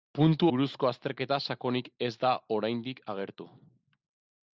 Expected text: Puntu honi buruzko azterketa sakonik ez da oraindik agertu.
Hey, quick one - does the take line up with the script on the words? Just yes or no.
no